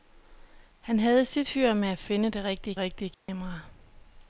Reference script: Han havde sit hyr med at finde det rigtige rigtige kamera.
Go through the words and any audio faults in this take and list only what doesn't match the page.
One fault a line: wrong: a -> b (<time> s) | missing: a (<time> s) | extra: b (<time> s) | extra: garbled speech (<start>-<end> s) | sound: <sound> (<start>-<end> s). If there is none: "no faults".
sound: dropout (3.1-3.3 s)